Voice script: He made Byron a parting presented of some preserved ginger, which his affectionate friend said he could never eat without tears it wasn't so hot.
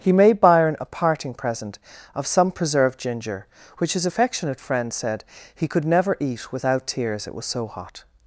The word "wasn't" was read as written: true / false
false